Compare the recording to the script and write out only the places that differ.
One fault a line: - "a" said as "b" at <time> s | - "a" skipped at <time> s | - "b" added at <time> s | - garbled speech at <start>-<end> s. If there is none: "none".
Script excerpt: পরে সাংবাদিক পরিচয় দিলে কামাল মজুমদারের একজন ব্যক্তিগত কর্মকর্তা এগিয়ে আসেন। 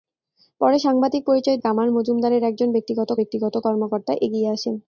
- "দিলে" skipped at 1.6 s
- "ব্যক্তিগত" added at 3.2 s